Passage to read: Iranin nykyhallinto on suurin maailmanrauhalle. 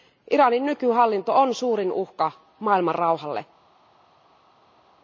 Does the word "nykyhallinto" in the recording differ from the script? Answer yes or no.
no